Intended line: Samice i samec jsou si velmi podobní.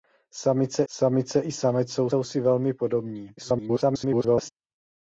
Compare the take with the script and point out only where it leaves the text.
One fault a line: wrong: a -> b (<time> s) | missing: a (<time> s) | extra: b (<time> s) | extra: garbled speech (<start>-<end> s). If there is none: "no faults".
extra: samice (0.9 s)
extra: jsou (2.1 s)
extra: garbled speech (3.4-4.5 s)